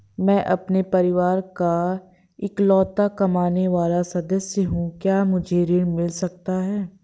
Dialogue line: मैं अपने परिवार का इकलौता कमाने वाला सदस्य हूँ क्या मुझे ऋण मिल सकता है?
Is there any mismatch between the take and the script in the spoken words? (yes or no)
no